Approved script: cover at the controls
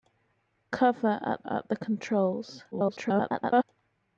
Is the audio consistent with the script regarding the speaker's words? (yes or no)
no